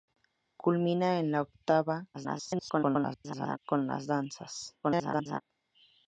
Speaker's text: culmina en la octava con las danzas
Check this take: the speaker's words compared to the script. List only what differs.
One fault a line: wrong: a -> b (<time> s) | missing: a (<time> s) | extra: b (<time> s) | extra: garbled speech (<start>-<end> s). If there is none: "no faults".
extra: garbled speech (2.1-3.6 s)
extra: garbled speech (4.8-5.4 s)